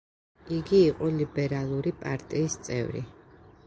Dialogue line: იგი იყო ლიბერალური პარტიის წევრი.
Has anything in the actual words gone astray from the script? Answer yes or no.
no